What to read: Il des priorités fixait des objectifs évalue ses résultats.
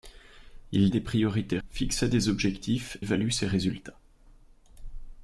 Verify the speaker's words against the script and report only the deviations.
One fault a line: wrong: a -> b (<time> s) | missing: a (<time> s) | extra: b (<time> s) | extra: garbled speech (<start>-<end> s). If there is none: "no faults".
no faults